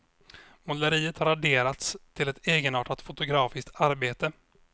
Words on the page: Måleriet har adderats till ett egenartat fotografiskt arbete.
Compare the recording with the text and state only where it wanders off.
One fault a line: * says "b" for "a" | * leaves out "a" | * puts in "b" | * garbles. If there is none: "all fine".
all fine